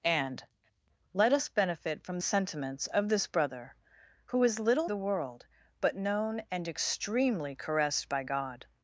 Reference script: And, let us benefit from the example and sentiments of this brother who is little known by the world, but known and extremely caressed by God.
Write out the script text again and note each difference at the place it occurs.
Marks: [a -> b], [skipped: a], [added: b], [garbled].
And, let us benefit from [skipped: the example and] sentiments of this brother who is little [skipped: known by] the world, but known and extremely caressed by God.